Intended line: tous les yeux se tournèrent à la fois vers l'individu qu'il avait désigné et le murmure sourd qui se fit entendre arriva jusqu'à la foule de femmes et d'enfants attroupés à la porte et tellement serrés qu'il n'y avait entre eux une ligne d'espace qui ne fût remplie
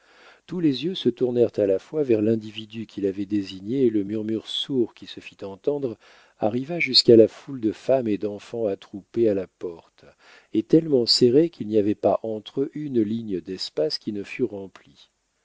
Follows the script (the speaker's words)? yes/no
no